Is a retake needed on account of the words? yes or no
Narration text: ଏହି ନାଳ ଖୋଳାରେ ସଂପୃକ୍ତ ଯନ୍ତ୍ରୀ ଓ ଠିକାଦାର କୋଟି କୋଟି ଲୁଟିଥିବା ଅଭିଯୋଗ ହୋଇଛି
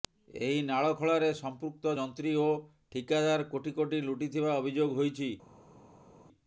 no